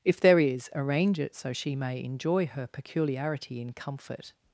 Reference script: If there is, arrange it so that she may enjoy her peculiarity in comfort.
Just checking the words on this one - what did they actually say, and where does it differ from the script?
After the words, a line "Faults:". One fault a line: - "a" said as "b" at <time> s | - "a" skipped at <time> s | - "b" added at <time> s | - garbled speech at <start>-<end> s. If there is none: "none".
If there is, arrange it so she may enjoy her peculiarity in comfort.
Faults:
- "that" skipped at 1.5 s